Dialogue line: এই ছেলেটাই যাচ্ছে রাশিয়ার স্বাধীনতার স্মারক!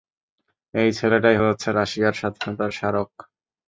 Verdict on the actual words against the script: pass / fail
pass